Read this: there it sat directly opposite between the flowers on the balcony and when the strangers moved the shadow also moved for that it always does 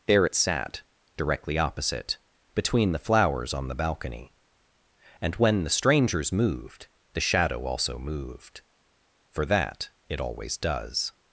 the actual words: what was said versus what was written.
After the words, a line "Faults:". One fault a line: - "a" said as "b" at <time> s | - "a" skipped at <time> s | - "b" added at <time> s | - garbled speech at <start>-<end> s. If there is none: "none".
there it sat directly opposite between the flowers on the balcony and when the strangers moved the shadow also moved for that it always does
Faults:
none